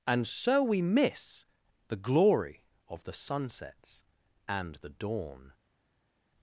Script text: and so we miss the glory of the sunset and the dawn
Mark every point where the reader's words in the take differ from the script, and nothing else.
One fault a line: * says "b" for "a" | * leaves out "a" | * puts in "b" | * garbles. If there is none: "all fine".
* says "sunsets" for "sunset"